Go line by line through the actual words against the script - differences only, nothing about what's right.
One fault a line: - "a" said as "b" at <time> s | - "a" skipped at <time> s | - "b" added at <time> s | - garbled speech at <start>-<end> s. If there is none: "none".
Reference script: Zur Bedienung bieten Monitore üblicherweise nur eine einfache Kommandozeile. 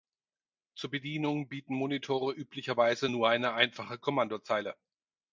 none